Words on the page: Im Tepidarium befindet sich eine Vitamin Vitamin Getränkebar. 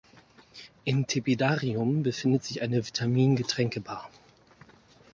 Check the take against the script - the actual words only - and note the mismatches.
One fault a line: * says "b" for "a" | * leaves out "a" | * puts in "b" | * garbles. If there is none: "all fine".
* leaves out "Vitamin"